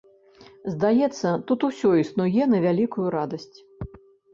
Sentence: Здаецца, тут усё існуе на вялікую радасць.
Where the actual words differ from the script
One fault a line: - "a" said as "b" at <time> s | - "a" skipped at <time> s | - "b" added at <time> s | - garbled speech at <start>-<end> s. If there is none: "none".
none